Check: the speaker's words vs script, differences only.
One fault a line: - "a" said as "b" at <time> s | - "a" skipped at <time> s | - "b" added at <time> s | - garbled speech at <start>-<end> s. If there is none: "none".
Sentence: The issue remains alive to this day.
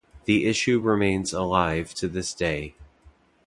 none